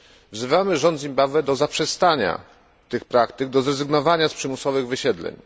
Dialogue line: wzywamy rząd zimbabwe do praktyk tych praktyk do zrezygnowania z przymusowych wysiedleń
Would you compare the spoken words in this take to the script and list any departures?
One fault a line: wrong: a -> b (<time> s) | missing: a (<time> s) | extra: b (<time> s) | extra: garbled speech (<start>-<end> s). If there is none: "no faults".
wrong: praktyk -> zaprzestania (1.6 s)